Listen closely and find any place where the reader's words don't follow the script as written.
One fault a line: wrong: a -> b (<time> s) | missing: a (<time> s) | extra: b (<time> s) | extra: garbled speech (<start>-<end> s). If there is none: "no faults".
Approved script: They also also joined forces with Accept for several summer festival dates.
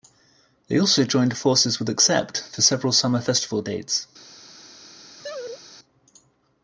missing: also (1.0 s)